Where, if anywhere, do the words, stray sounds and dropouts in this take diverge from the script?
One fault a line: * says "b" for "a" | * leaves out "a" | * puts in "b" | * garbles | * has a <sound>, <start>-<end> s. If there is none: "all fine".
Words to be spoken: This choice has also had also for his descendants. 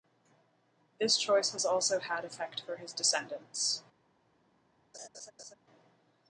* says "effect" for "also"
* has a laugh, 4.9-5.5 s